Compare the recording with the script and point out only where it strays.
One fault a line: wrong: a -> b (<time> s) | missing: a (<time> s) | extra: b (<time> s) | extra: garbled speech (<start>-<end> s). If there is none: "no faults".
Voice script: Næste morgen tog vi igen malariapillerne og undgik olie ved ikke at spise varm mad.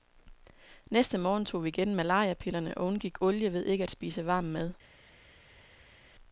no faults